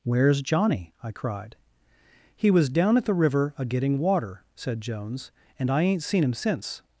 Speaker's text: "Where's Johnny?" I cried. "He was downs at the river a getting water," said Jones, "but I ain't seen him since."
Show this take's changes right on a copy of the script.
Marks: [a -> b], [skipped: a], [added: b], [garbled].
"Where's Johnny?" I cried. "He was [downs -> down] at the river a getting water," said Jones, ["but -> and] I ain't seen him since."